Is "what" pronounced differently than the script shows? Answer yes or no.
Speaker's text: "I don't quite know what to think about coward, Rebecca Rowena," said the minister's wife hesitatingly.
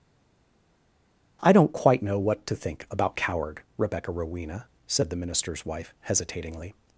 no